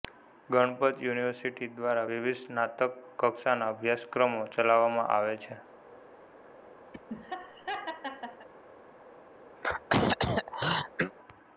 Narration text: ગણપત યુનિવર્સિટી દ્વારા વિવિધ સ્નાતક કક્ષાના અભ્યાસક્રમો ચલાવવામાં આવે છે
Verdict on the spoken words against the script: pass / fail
pass